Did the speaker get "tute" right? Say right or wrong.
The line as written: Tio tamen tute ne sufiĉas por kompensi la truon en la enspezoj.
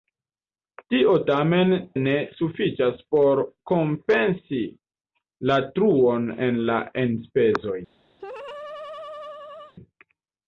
wrong